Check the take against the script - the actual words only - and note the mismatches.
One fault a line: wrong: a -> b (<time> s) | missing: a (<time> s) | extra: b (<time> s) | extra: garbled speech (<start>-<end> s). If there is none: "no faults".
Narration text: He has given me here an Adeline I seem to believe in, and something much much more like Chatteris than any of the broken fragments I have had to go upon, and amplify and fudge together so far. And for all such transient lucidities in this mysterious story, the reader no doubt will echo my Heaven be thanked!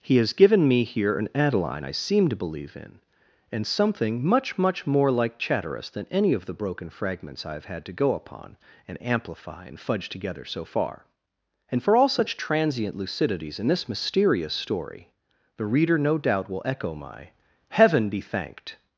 no faults